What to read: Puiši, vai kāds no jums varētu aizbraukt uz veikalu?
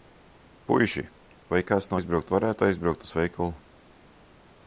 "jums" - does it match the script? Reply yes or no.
no